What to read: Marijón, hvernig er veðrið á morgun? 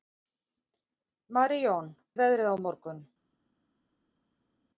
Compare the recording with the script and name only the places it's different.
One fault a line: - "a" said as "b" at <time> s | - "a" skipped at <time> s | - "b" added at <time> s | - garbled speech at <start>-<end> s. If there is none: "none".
- "hvernig" skipped at 1.9 s